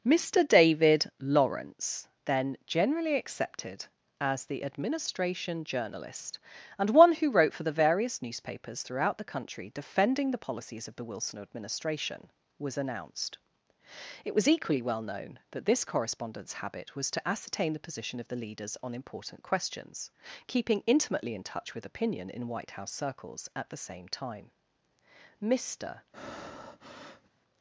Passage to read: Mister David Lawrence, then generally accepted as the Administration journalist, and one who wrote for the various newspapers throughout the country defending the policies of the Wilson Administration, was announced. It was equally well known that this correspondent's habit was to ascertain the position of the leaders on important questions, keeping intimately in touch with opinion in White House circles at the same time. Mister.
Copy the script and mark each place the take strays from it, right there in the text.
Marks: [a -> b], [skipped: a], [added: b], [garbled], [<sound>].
Mister David Lawrence, then generally accepted as the Administration journalist, and one who wrote for the various newspapers throughout the country defending the policies of the Wilson Administration, was announced. It was equally well known that this correspondent's habit was to ascertain the position of the leaders on important questions, keeping intimately in touch with opinion in White House circles at the same time. Mister. [breath]